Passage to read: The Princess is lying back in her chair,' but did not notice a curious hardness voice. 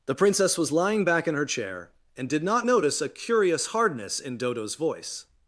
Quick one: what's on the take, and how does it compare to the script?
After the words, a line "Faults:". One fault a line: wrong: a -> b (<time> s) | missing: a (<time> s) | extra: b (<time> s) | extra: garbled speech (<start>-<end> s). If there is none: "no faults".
The Princess was lying back in her chair,' and did not notice a curious hardness in Dodo's voice.
Faults:
wrong: is -> was (0.6 s)
wrong: but -> and (2.2 s)
extra: in Dodo's (4.2 s)